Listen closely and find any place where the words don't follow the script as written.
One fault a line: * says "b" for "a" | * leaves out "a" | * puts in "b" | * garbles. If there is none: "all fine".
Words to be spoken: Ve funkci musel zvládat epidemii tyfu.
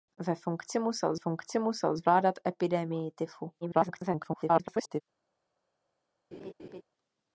* puts in "funkci musel"
* garbles